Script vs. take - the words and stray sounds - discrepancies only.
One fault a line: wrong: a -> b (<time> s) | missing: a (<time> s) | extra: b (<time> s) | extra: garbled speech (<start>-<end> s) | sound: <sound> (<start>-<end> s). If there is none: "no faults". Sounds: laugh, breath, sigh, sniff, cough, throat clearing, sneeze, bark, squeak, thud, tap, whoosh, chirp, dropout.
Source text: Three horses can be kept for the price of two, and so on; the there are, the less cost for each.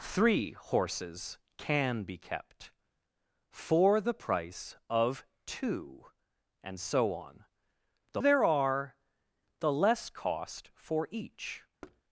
sound: thud (11.8-12.0 s)